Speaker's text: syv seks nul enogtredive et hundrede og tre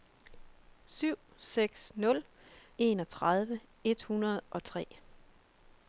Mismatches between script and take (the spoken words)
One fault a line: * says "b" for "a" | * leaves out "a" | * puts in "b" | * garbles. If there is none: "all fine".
all fine